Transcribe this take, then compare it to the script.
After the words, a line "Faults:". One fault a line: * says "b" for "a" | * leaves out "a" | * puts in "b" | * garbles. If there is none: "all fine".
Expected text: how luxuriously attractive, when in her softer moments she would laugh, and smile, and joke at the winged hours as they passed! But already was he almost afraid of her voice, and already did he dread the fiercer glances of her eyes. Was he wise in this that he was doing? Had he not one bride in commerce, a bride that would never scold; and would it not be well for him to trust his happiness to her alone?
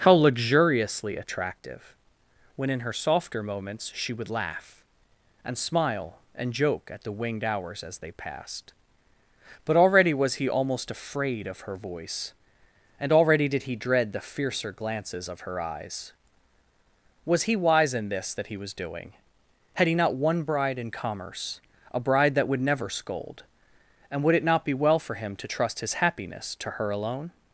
how luxuriously attractive, when in her softer moments she would laugh, and smile, and joke at the winged hours as they passed! But already was he almost afraid of her voice, and already did he dread the fiercer glances of her eyes. Was he wise in this that he was doing? Had he not one bride in commerce, a bride that would never scold; and would it not be well for him to trust his happiness to her alone?
Faults:
all fine